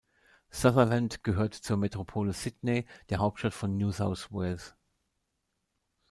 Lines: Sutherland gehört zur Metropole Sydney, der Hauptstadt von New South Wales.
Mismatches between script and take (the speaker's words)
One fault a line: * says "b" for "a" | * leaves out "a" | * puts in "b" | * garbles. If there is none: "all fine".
all fine